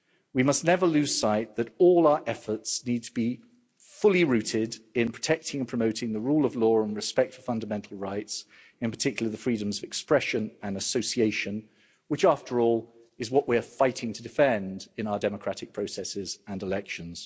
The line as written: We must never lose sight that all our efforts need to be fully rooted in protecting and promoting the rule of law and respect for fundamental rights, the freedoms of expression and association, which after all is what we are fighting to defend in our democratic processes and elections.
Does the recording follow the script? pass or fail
fail